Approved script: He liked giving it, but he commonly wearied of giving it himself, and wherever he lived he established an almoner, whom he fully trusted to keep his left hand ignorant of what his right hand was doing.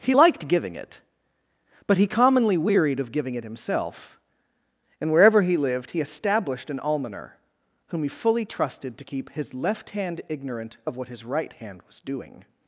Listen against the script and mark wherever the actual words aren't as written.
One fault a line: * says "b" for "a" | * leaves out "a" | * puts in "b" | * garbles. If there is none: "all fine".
all fine